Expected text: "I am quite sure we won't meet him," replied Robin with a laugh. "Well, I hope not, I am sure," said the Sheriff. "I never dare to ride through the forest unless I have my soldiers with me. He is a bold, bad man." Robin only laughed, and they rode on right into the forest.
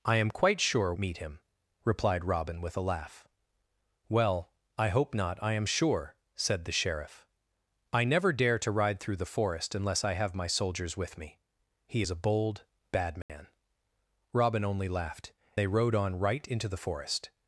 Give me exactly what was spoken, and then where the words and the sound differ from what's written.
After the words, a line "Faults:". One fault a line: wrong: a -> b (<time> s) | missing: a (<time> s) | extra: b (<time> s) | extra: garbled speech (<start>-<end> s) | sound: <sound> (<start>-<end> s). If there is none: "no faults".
"I am quite sure meet him," replied Robin with a laugh. "Well, I hope not, I am sure," said the Sheriff. "I never dare to ride through the forest unless I have my soldiers with me. He is a bold, bad man." Robin only laughed, they rode on right into the forest.
Faults:
missing: we won't (0.9 s)
sound: dropout (13.2-13.3 s)
missing: and (15.3 s)